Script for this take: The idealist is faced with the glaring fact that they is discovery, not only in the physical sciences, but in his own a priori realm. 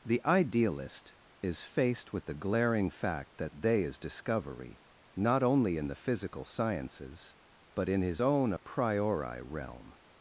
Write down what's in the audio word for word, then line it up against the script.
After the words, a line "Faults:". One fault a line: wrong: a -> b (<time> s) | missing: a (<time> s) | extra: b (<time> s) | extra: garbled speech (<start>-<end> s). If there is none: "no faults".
The idealist is faced with the glaring fact that they is discovery, not only in the physical sciences, but in his own a priori realm.
Faults:
no faults